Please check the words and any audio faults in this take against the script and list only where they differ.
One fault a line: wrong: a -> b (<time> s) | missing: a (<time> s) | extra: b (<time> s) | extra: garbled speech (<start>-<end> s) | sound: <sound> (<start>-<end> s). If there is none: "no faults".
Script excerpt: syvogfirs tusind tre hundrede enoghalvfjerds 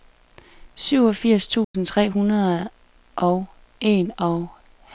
sound: dropout (1.6-1.7 s)
extra: og (3.1 s)